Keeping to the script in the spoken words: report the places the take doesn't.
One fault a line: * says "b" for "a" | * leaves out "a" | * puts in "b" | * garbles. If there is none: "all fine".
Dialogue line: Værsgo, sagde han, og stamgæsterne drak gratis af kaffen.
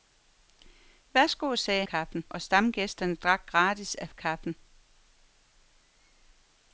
* says "kaffen" for "han"